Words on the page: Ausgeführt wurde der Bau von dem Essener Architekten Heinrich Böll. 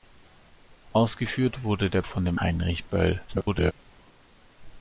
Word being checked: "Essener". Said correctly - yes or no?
no